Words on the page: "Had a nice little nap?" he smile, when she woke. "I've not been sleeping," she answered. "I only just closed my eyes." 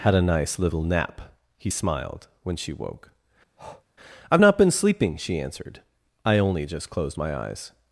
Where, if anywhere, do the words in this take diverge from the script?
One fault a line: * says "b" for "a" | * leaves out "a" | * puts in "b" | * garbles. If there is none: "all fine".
* says "smiled" for "smile"